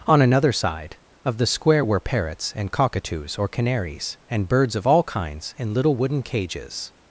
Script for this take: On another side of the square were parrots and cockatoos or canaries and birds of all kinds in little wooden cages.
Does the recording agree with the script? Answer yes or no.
yes